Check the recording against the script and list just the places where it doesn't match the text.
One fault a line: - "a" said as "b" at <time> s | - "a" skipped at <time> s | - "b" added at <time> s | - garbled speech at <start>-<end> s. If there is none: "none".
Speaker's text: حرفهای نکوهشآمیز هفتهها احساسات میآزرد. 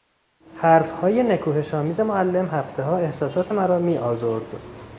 - "معلم" added at 2.0 s
- "مرا" added at 3.5 s